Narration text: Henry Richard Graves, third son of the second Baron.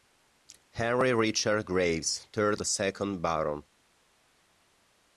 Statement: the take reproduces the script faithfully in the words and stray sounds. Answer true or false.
false